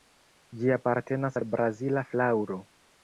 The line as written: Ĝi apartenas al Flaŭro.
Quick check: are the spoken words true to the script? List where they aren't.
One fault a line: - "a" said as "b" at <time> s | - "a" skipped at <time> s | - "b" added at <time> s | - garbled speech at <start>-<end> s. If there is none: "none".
- "Brazila" added at 1.5 s